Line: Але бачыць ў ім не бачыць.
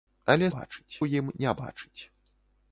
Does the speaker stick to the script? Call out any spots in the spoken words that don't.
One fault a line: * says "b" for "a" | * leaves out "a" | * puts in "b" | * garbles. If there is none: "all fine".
all fine